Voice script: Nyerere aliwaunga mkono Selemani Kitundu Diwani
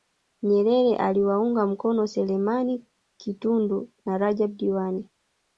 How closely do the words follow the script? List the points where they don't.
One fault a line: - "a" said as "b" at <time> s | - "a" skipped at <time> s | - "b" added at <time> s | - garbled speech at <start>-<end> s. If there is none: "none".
- "na Rajab" added at 4.0 s